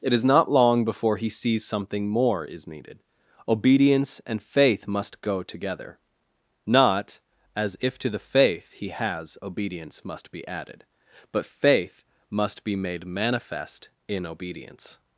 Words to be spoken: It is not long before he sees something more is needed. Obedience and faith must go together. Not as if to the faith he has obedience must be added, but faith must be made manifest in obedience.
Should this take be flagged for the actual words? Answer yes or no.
no